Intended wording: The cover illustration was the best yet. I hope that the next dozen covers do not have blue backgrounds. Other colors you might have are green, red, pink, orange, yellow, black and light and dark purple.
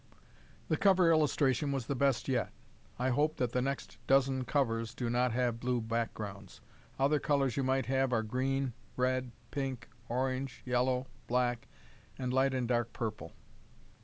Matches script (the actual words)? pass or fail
pass